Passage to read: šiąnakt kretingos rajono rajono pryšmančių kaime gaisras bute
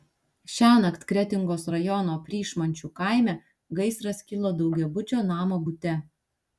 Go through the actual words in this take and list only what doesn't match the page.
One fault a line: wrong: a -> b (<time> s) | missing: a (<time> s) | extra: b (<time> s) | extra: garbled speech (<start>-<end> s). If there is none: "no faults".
missing: rajono (2.2 s)
extra: kilo daugiabučio namo (4.3 s)